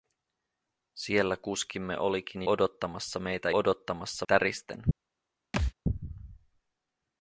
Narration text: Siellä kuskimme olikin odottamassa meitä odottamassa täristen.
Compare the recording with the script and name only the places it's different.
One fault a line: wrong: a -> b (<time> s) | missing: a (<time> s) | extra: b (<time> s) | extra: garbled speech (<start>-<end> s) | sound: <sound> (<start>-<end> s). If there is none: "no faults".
sound: thud (5.5-5.7 s)